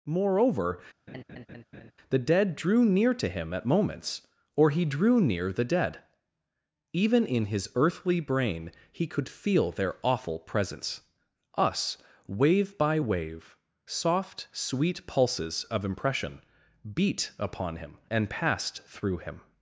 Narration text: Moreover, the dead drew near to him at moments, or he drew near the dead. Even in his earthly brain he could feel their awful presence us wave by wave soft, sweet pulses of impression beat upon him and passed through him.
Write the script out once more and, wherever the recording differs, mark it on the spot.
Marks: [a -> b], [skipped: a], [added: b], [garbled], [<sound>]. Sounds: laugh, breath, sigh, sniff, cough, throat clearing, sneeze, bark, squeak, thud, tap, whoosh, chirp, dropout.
Moreover, [laugh] the dead drew near to him at moments, or he drew near the dead. Even in his earthly brain he could feel their awful presence us wave by wave soft, sweet pulses of impression beat upon him and passed through him.